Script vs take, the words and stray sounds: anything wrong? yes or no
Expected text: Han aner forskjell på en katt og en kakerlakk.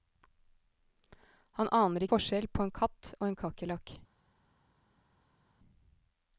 no